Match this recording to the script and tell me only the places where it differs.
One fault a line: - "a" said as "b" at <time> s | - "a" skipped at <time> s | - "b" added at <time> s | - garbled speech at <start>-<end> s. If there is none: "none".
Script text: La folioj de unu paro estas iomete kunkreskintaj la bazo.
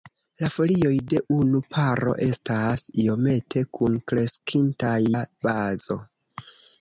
none